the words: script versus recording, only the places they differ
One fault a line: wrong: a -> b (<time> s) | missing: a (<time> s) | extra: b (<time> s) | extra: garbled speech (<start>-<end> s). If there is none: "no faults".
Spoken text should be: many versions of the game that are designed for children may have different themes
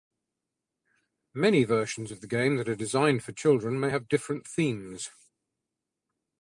no faults